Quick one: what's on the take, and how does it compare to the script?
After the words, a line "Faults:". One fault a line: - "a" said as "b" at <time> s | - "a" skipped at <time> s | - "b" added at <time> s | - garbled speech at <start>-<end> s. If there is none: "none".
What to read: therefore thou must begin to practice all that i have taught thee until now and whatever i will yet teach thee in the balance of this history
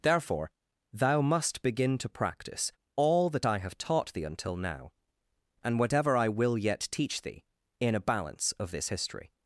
therefore thou must begin to practice all that i have taught thee until now and whatever i will yet teach thee in a balance of this history
Faults:
- "the" said as "a" at 8.0 s